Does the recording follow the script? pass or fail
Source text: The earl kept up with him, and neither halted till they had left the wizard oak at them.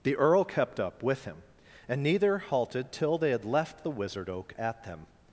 pass